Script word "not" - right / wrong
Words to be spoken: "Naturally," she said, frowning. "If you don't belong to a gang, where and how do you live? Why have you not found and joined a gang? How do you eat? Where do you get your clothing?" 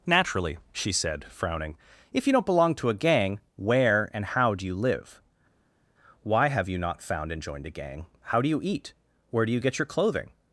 right